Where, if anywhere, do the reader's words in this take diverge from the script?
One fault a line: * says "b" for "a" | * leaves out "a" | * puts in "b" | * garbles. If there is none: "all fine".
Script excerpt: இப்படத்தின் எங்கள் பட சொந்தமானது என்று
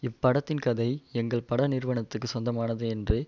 * puts in "கதை"
* puts in "நிறுவனத்துக்கு"